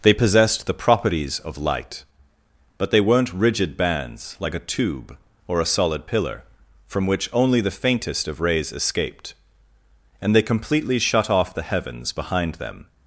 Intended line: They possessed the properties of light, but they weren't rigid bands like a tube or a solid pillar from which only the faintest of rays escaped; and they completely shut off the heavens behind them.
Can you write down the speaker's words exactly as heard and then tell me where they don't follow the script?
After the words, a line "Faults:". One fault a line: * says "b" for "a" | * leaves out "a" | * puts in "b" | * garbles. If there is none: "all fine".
They possessed the properties of light, but they weren't rigid bands like a tube or a solid pillar from which only the faintest of rays escaped; and they completely shut off the heavens behind them.
Faults:
all fine